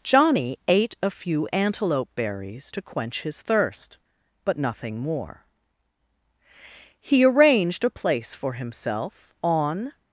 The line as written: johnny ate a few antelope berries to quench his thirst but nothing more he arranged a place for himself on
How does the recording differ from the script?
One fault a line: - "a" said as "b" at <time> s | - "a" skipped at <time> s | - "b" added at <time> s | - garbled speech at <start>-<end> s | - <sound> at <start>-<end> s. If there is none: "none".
none